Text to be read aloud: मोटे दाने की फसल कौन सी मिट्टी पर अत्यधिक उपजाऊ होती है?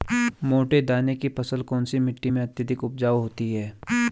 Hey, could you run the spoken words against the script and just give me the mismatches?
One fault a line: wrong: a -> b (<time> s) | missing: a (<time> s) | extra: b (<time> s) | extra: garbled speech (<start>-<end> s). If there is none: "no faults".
wrong: पर -> में (2.3 s)